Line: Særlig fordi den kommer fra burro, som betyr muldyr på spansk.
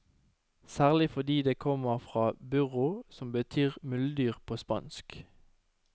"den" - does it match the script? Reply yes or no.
no